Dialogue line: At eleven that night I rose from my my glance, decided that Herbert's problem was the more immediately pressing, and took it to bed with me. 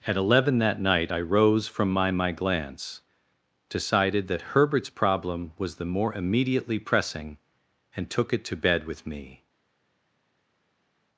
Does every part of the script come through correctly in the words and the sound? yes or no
yes